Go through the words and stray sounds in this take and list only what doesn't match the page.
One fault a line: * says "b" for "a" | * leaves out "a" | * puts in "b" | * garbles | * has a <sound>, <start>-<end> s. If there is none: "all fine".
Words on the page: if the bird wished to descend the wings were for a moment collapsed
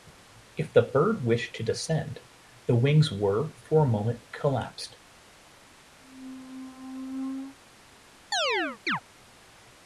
* has a squeak, 6.0-7.6 s
* has a chirp, 8.3-9.0 s